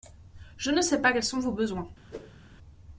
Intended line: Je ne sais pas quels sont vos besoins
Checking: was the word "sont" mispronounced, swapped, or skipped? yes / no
no